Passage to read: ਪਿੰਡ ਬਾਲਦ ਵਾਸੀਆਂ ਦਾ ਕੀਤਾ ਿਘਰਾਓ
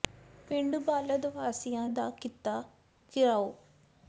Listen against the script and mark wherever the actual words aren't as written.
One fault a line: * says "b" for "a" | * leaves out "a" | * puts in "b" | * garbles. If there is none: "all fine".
all fine